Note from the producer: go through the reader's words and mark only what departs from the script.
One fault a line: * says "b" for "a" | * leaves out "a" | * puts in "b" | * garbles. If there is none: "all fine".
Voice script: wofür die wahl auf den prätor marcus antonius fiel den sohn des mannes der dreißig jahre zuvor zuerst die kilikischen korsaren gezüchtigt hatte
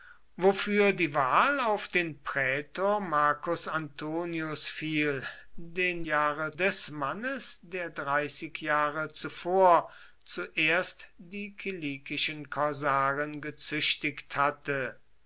* says "jahre" for "sohn"